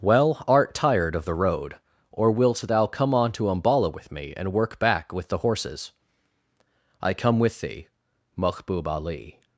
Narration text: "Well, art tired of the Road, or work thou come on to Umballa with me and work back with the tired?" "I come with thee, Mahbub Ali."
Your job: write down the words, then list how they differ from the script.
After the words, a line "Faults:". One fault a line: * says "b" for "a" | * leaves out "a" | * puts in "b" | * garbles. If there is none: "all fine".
"Well, art tired of the Road, or wilt thou come on to Umballa with me and work back with the horses?" "I come with thee, Mahbub Ali."
Faults:
* says "wilt" for "work"
* says "horses" for "tired"